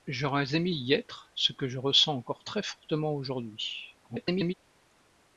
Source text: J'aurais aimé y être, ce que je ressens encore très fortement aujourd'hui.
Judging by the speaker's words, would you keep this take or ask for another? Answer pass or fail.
fail